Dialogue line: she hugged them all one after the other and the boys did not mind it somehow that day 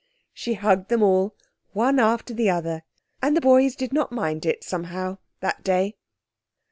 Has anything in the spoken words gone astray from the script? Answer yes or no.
no